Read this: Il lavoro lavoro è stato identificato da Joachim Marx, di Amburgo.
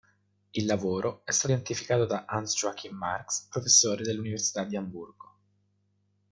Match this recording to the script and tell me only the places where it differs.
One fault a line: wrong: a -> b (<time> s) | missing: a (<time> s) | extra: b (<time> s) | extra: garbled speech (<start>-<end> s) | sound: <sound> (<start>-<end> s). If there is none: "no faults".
missing: lavoro (1.2 s)
extra: Hans (2.3 s)
extra: professore dell'Università (3.5 s)